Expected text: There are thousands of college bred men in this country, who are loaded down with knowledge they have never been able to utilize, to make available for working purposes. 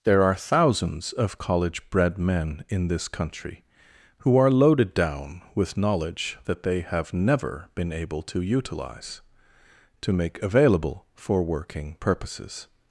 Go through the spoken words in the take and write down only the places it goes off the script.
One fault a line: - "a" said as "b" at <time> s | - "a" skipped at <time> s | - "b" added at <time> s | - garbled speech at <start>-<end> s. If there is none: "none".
- "that" added at 6.5 s